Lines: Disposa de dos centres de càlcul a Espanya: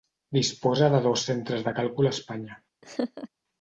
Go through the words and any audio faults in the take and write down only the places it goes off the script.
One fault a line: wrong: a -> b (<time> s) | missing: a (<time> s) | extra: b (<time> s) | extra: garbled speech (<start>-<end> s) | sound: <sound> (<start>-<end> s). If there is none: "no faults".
sound: laugh (2.8-3.3 s)